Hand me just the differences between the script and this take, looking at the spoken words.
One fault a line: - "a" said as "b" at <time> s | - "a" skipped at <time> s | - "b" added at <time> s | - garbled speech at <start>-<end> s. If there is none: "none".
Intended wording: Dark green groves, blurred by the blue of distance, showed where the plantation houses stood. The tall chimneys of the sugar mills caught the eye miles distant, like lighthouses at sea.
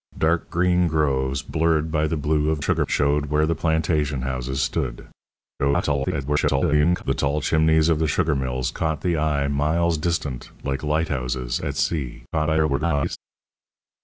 - "distance" said as "sugar" at 2.6 s
- garbled speech at 5.6-7.0 s
- garbled speech at 12.3-13.2 s